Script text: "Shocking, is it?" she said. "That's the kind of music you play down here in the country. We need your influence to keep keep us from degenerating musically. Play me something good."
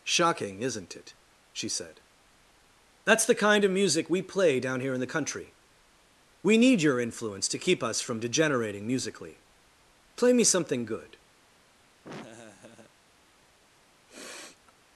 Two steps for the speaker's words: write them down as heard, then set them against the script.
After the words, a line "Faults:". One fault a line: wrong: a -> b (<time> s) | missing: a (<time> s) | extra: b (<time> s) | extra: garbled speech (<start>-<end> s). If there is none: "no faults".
"Shocking, isn't it?" she said. "That's the kind of music we play down here in the country. We need your influence to keep us from degenerating musically. Play me something good."
Faults:
wrong: is -> isn't (0.6 s)
wrong: you -> we (4.1 s)
missing: keep (7.8 s)